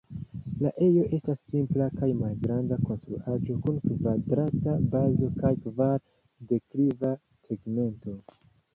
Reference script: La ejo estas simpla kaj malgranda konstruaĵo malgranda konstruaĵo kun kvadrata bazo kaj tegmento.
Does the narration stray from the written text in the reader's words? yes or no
yes